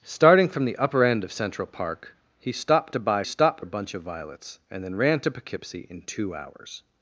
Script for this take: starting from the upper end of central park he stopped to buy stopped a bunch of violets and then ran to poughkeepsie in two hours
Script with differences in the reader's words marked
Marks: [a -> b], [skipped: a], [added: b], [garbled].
starting from the upper end of central park he stopped to buy stopped a bunch of violets and then ran to poughkeepsie in two hours